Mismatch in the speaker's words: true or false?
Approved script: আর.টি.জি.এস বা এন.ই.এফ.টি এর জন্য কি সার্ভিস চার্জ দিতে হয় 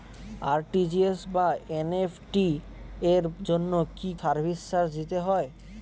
false